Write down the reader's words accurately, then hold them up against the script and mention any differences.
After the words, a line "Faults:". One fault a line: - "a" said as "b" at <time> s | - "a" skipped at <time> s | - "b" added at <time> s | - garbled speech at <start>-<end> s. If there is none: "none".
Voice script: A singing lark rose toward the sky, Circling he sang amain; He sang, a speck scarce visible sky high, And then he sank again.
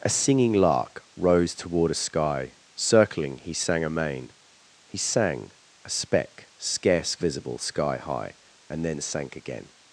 A singing lark rose toward a sky, Circling he sang amain; He sang, a speck scarce visible sky high, And then sank again.
Faults:
- "the" said as "a" at 1.9 s
- "he" skipped at 9.0 s